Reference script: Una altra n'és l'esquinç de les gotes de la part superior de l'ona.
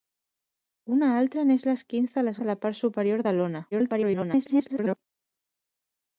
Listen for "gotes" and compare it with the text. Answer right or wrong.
wrong